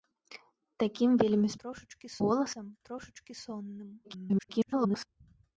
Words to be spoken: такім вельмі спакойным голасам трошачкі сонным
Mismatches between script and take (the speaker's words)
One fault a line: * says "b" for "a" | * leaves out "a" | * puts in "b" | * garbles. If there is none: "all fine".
* says "трошачкі" for "спакойным"
* garbles